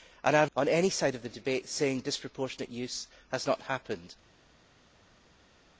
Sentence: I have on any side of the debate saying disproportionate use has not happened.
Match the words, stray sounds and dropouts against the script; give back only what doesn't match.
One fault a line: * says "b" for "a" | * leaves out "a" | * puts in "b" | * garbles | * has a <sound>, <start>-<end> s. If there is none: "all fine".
all fine